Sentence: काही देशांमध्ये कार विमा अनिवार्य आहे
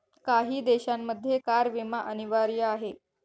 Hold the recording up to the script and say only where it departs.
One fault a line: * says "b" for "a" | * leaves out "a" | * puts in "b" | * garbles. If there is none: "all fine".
all fine